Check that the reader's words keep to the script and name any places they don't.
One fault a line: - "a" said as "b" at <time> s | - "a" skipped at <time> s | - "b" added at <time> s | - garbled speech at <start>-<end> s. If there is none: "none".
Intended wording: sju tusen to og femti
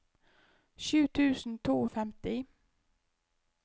none